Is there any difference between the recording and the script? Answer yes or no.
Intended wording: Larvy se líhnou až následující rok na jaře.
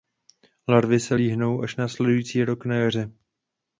no